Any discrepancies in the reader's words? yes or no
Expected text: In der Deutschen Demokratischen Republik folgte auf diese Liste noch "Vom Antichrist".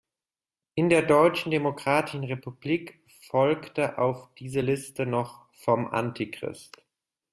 no